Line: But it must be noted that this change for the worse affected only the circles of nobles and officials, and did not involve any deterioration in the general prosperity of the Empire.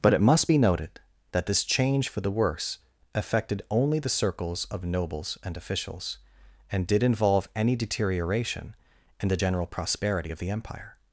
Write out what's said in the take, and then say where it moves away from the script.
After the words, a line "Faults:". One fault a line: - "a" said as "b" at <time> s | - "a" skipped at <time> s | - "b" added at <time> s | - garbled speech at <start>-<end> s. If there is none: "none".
But it must be noted that this change for the worse affected only the circles of nobles and officials, and did involve any deterioration in the general prosperity of the Empire.
Faults:
- "not" skipped at 7.0 s